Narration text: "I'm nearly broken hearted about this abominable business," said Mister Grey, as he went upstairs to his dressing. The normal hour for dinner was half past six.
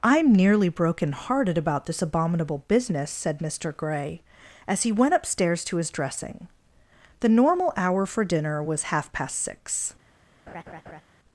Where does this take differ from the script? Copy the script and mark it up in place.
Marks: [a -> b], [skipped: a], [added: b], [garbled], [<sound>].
"I'm nearly broken hearted about this abominable business," said Mister Grey, as he went upstairs to his dressing. The normal hour for dinner was half past six. [laugh]